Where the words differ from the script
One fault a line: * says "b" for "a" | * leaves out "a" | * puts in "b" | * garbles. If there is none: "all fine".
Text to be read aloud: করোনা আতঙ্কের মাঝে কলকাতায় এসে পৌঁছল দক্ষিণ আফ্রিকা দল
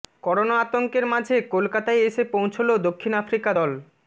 all fine